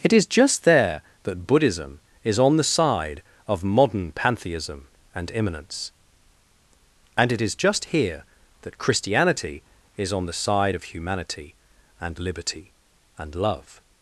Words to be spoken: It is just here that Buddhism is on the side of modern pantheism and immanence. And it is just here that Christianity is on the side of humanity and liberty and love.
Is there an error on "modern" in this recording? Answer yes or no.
no